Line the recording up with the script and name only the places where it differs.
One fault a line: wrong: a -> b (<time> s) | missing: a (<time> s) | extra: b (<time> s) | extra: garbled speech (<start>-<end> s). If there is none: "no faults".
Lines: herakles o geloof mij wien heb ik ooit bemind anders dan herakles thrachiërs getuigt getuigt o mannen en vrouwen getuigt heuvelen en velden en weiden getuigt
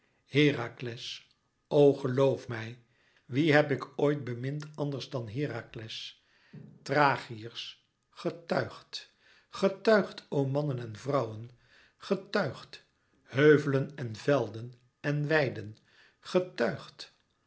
no faults